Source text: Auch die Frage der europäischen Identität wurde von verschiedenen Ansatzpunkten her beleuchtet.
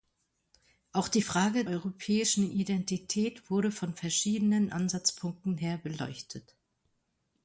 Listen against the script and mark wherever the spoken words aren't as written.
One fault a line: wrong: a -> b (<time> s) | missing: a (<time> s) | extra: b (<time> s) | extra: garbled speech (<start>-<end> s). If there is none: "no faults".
missing: der (1.7 s)